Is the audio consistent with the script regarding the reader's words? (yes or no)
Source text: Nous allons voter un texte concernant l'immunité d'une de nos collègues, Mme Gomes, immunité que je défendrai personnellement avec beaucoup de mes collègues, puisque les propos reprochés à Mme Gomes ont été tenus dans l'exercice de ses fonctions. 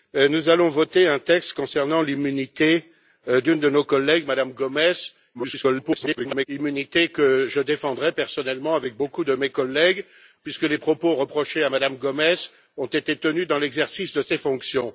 no